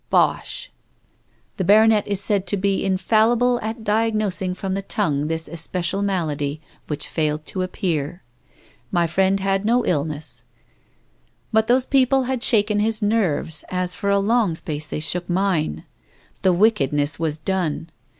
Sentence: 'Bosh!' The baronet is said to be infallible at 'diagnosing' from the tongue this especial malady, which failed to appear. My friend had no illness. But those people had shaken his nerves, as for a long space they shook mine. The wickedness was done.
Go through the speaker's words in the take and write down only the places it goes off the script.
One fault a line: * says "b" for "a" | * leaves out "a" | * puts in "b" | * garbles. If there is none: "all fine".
all fine